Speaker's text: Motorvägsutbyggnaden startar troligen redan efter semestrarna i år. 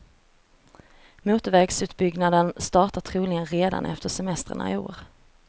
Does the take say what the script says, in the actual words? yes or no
yes